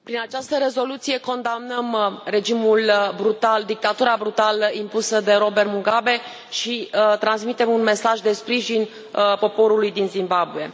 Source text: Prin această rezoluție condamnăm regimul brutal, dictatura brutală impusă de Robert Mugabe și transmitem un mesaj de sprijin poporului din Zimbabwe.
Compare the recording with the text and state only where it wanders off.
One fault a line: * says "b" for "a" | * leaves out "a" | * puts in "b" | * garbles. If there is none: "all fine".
all fine